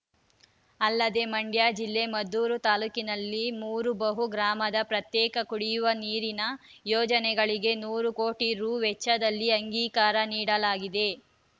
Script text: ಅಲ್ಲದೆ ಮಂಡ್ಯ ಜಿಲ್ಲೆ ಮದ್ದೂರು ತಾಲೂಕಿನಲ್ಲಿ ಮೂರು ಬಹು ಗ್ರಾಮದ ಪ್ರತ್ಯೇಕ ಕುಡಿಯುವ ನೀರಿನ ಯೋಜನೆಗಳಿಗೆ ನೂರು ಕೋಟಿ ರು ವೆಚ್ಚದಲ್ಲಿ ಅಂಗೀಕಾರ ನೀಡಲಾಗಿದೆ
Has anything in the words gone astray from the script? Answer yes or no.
no